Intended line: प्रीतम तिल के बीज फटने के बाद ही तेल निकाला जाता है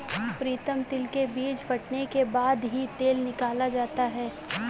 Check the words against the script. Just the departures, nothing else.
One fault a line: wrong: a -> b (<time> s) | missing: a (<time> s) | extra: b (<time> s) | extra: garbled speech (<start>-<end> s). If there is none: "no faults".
no faults